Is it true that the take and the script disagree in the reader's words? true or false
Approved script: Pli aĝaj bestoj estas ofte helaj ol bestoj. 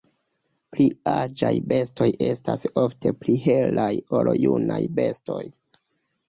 true